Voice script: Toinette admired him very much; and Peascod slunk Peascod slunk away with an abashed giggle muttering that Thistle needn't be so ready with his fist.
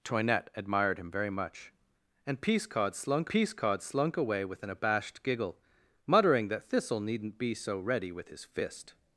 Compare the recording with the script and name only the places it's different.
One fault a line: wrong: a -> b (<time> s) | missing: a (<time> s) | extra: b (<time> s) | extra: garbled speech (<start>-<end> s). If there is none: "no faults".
no faults